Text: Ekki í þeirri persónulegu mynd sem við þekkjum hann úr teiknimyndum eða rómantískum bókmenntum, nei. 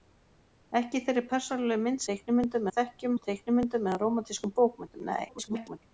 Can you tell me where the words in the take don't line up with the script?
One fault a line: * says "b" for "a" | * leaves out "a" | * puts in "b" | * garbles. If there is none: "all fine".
* says "teiknimyndum" for "sem"
* leaves out "hann"
* garbles